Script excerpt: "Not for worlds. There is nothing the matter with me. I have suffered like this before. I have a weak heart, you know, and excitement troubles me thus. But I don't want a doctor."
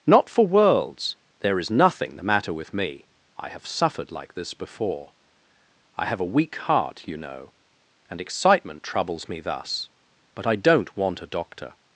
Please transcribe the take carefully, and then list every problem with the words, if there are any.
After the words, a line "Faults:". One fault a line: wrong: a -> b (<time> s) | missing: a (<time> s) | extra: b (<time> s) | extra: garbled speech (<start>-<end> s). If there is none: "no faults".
"Not for worlds. There is nothing the matter with me. I have suffered like this before. I have a weak heart, you know, and excitement troubles me thus. But I don't want a doctor."
Faults:
no faults